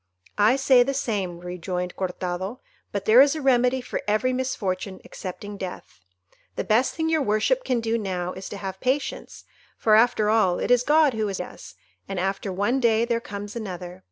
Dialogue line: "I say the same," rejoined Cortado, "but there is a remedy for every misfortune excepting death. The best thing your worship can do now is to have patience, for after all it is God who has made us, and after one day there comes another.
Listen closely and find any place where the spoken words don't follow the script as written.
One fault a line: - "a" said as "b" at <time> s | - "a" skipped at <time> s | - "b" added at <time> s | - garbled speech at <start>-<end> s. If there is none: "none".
- "made" skipped at 11.4 s